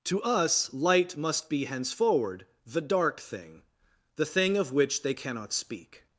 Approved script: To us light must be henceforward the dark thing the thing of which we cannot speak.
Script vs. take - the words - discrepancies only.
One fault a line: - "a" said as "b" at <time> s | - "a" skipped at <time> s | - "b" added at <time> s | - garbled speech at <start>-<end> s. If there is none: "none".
- "we" said as "they" at 5.0 s